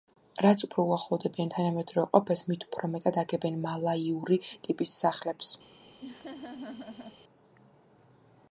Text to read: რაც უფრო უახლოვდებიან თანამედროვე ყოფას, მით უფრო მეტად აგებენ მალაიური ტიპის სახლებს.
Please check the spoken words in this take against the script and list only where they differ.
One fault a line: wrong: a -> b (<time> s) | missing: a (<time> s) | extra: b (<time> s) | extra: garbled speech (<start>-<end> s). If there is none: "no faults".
no faults